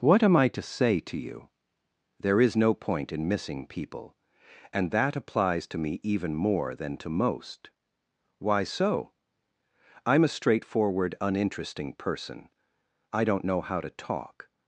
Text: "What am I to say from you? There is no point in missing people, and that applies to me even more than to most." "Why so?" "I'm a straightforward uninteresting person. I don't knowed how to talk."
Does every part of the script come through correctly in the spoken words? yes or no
no